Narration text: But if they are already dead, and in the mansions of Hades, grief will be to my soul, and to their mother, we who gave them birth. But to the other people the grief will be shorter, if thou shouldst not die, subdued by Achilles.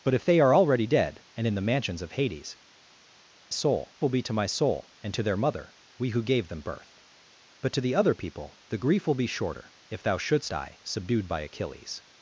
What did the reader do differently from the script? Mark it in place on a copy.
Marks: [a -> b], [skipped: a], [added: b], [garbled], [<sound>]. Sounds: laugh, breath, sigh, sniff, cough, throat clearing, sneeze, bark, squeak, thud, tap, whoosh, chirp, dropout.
But if they are already dead, and in the mansions of Hades, [grief -> soul] will be to my soul, and to their mother, we who gave them birth. But to the other people the grief will be shorter, if thou shouldst [skipped: not] die, subdued by Achilles.